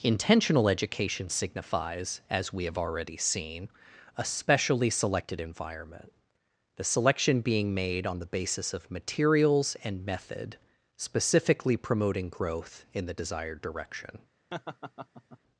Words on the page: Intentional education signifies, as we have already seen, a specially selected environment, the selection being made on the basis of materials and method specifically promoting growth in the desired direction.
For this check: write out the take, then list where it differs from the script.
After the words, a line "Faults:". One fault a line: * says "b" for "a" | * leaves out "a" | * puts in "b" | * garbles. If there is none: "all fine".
Intentional education signifies, as we have already seen, a specially selected environment, the selection being made on the basis of materials and method specifically promoting growth in the desired direction.
Faults:
all fine